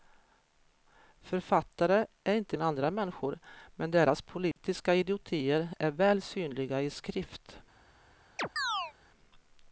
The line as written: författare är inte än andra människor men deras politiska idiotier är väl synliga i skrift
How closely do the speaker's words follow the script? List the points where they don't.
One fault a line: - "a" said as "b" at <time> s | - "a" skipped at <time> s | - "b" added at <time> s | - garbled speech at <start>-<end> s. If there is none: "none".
none